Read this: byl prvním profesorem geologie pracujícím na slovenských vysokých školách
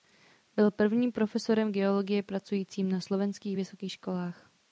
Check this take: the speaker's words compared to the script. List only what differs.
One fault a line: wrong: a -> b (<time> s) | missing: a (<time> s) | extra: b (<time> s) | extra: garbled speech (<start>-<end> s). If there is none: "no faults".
no faults